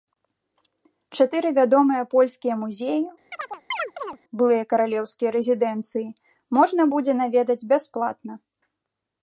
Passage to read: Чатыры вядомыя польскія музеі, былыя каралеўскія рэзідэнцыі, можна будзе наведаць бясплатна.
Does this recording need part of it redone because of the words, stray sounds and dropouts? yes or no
yes